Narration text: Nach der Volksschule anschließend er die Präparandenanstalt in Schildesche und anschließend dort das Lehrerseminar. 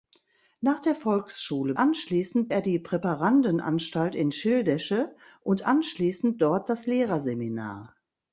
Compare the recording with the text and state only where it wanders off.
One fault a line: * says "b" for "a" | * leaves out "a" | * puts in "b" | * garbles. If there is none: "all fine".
all fine